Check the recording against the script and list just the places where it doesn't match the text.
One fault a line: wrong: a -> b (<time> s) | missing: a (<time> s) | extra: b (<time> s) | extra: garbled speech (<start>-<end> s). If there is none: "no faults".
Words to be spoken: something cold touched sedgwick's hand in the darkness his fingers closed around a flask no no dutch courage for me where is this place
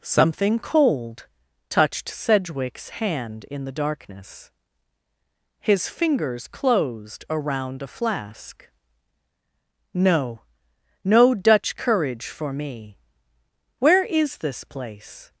no faults